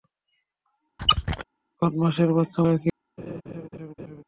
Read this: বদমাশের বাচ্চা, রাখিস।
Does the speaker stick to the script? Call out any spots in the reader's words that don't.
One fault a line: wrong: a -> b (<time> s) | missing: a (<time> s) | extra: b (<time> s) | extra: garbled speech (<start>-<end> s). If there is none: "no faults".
no faults